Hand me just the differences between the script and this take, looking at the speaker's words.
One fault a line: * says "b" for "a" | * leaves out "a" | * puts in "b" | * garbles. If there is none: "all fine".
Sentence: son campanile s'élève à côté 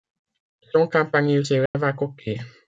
all fine